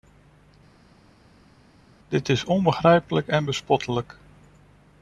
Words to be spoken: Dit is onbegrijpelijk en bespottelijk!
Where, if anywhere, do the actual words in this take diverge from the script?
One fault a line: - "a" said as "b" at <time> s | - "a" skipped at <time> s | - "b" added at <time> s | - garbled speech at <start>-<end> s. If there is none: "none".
none